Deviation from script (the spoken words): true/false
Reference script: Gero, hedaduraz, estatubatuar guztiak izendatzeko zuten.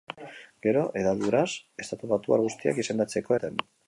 false